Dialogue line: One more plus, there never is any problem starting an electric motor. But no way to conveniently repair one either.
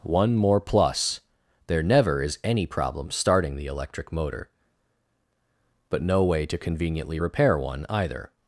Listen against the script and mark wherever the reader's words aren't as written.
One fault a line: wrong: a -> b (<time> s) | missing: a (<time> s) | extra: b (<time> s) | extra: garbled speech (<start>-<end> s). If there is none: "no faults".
wrong: an -> the (3.5 s)